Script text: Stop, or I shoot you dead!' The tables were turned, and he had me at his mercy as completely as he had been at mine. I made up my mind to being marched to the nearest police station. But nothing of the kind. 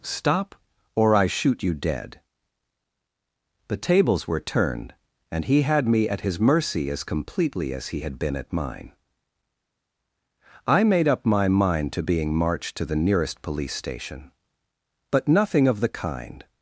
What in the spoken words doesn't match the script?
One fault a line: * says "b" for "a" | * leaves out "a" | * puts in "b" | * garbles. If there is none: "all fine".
all fine